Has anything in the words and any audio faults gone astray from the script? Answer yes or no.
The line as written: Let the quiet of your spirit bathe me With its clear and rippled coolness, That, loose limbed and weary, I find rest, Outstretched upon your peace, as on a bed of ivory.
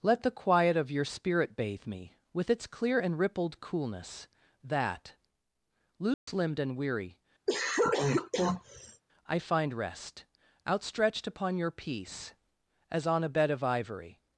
yes